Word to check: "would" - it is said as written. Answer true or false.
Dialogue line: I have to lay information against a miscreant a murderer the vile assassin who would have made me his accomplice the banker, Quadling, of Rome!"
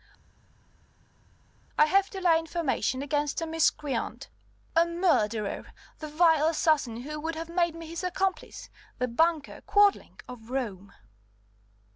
true